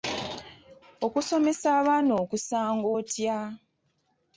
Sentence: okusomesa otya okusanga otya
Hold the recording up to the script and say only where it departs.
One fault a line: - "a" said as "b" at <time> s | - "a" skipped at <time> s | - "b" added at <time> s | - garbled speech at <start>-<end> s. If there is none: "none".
- "otya" said as "abaana" at 1.8 s